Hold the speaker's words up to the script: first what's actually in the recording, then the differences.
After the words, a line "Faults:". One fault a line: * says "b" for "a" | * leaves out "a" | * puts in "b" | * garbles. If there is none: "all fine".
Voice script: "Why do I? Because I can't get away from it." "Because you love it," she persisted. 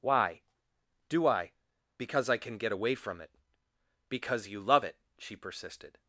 "Why do I? Because I can get away from it." "Because you love it," she persisted.
Faults:
* says "can" for "can't"